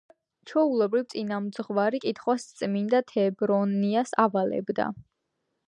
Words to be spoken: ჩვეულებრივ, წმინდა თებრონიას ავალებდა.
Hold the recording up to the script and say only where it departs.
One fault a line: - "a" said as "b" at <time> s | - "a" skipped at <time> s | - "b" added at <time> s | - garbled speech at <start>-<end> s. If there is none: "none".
- "წინამძღვარი კითხვას" added at 1.1 s